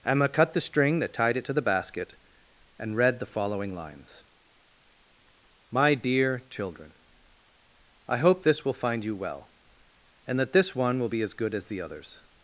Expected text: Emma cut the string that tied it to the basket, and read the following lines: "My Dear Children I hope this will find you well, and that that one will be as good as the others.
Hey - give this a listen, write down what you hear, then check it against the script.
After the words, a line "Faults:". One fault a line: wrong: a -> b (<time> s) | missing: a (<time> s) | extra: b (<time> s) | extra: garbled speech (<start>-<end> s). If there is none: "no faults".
Emma cut the string that tied it to the basket, and read the following lines: "My Dear Children I hope this will find you well, and that this one will be as good as the others.
Faults:
wrong: that -> this (10.5 s)